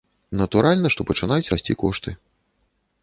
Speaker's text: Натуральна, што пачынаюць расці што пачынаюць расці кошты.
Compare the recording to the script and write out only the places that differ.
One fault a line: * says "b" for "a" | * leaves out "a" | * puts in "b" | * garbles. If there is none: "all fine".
* leaves out "што пачынаюць расці"